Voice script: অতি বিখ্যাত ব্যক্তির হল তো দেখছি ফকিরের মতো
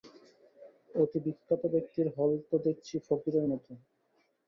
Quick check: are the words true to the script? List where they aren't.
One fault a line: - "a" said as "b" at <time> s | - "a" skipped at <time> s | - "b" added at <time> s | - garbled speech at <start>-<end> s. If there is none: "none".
none